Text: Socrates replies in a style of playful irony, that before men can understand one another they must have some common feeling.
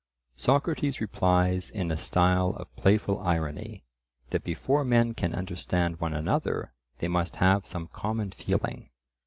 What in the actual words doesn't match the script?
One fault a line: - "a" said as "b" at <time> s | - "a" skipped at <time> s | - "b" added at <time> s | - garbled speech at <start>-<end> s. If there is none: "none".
none